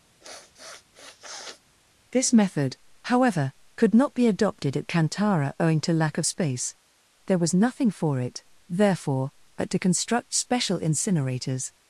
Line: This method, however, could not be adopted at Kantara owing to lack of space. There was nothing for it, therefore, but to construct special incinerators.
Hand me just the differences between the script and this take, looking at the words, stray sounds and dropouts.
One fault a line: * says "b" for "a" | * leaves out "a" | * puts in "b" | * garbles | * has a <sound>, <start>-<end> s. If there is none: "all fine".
* has a sniff, 0.2-1.6 s